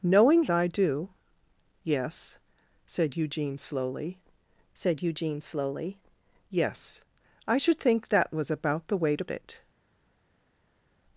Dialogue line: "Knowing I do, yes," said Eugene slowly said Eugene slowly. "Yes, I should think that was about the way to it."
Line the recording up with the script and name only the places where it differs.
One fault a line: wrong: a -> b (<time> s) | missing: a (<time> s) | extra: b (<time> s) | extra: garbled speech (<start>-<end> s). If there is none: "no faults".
no faults